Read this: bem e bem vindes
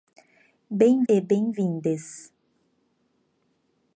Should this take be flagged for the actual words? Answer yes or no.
no